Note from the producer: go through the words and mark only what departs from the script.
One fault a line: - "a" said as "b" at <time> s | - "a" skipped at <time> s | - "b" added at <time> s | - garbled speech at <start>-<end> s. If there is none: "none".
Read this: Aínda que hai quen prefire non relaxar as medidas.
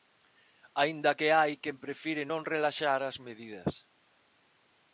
none